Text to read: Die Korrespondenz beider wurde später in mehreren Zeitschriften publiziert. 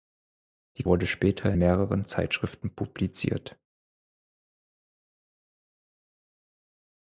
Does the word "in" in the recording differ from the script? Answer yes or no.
yes